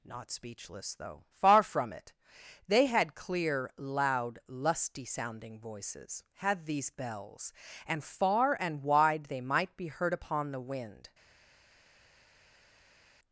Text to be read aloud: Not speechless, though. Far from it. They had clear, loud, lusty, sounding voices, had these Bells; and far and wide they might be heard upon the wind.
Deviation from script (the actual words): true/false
false